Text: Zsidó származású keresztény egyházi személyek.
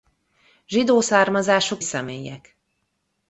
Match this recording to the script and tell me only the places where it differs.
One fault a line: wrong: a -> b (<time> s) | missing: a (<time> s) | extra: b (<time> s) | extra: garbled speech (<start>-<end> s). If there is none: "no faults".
missing: keresztény egyházi (1.8 s)